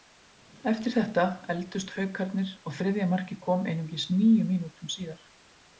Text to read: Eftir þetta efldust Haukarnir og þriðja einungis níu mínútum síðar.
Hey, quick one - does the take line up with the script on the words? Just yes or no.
no